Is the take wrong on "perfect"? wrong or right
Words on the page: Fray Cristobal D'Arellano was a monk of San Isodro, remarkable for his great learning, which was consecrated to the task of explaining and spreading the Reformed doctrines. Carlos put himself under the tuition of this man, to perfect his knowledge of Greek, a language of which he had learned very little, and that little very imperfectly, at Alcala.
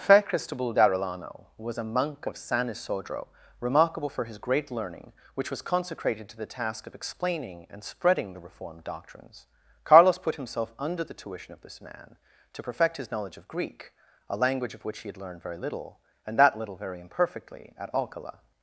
right